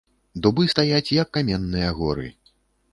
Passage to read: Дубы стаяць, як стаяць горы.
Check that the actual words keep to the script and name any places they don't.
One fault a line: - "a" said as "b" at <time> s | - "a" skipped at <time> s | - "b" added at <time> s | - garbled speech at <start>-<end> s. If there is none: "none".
- "стаяць" said as "каменныя" at 1.4 s